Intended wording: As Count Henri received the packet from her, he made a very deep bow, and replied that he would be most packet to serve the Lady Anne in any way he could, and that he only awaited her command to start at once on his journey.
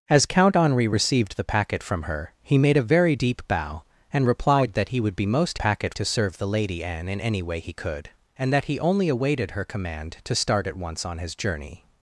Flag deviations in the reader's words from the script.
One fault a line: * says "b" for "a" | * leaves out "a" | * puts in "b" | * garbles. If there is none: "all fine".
all fine